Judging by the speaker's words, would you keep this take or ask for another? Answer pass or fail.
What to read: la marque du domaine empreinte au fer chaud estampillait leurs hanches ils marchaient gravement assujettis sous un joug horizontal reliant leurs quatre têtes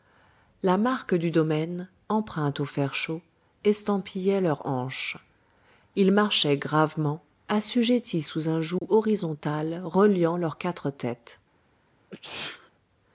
pass